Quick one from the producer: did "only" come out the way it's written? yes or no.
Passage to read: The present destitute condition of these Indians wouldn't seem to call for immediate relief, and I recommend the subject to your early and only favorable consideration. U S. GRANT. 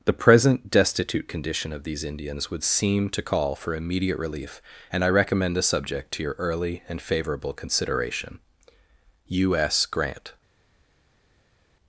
no